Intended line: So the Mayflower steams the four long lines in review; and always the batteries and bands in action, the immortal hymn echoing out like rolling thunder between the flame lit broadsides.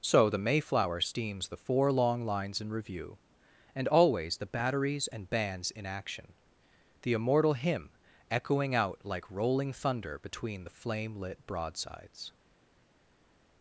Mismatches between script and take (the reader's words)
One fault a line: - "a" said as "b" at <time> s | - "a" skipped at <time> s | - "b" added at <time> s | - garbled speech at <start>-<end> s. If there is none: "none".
none